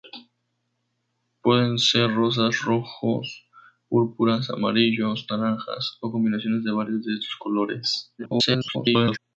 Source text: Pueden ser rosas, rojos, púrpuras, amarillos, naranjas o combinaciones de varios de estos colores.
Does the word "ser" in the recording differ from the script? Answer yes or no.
no